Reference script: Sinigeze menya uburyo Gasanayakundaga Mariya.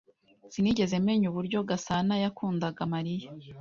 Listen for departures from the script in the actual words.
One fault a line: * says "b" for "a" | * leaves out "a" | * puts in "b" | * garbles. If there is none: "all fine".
all fine